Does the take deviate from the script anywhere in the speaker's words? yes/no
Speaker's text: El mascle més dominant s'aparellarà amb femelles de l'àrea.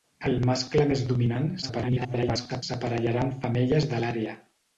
yes